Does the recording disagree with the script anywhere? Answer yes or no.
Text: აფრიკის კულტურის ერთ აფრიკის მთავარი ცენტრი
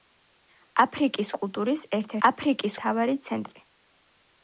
no